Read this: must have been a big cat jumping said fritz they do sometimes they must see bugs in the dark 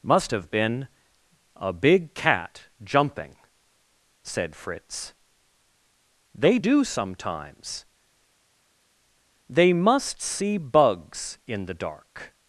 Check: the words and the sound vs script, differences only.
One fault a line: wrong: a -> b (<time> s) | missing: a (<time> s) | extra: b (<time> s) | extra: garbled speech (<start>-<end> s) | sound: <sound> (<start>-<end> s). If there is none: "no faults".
no faults